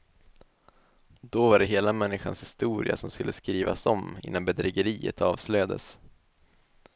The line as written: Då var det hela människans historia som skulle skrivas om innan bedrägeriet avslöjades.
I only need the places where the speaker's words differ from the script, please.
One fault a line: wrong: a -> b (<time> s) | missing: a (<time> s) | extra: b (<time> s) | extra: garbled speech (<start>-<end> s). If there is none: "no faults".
no faults